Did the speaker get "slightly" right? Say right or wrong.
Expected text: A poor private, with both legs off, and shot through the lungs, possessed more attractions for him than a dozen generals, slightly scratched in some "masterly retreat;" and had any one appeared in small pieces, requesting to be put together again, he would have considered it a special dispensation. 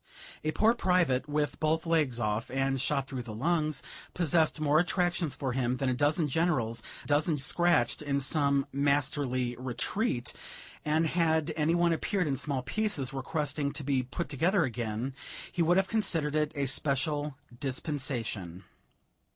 wrong